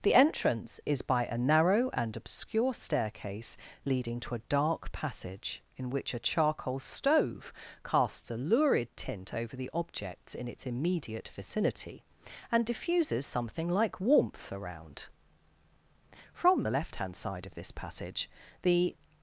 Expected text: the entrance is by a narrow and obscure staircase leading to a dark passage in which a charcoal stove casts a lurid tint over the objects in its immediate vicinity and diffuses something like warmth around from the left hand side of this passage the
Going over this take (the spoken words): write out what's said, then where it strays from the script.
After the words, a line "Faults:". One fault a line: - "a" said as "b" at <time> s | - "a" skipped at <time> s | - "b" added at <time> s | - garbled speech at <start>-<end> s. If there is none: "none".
the entrance is by a narrow and obscure staircase leading to a dark passage in which a charcoal stove casts a lurid tint over the objects in its immediate vicinity and diffuses something like warmth around from the left hand side of this passage the
Faults:
none